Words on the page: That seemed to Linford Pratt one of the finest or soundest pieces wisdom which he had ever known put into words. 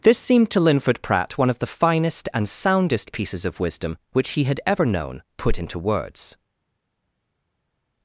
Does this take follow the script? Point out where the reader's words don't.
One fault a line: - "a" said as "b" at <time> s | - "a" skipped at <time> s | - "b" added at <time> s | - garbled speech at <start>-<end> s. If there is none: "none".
- "That" said as "This" at 0.0 s
- "or" said as "and" at 2.3 s
- "of" added at 3.5 s